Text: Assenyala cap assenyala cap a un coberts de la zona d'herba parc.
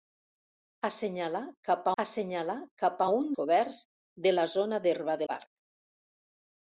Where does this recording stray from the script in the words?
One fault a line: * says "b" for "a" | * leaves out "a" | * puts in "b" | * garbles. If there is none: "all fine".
all fine